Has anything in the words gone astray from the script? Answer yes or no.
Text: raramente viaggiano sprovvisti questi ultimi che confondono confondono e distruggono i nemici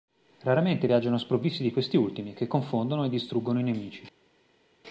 yes